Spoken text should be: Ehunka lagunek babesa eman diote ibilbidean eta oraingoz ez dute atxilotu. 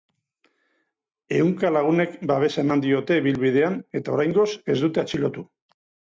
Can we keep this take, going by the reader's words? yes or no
yes